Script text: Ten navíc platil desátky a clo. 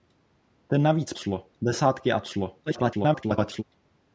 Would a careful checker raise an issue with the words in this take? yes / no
yes